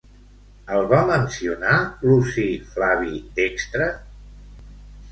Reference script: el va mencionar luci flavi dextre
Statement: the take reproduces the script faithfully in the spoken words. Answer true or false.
true